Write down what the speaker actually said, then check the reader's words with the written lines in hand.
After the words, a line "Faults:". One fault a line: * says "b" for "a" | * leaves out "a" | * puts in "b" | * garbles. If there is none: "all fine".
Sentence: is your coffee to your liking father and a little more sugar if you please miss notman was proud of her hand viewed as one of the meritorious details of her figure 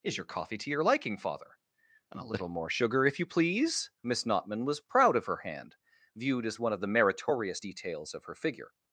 is your coffee to your liking father and a little more sugar if you please miss notman was proud of her hand viewed as one of the meritorious details of her figure
Faults:
all fine